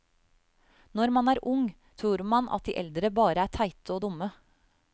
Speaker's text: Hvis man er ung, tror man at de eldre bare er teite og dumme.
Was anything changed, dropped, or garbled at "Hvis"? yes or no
yes